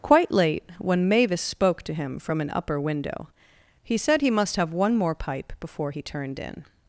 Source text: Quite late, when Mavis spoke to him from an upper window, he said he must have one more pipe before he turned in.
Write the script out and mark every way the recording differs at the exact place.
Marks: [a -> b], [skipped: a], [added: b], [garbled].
Quite late, when Mavis spoke to him from an upper window, he said he must have one more pipe before he turned in.